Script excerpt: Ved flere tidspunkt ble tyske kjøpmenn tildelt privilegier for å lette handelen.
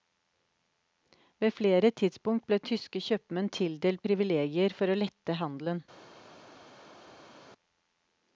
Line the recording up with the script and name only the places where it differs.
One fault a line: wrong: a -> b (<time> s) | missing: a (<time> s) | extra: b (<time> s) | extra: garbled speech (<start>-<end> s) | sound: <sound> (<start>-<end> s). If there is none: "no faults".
no faults